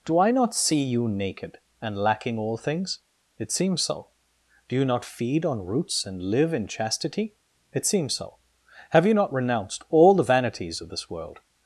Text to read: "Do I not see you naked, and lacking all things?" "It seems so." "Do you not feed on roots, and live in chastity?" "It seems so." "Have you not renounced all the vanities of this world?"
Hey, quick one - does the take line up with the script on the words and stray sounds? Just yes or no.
yes